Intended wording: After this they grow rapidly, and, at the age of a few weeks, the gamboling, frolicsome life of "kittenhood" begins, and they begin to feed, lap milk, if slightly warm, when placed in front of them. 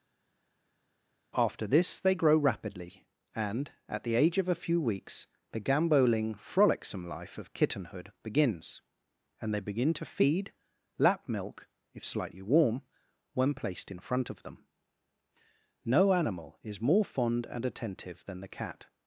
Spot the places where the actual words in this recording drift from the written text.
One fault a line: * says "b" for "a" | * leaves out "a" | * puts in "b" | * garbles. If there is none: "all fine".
* puts in "No animal is more fond and attentive than the cat"